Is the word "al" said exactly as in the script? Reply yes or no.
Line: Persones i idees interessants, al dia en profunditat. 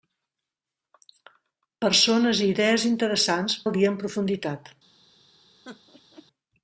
yes